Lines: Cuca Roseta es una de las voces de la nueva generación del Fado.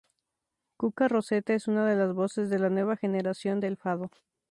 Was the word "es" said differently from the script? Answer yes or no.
no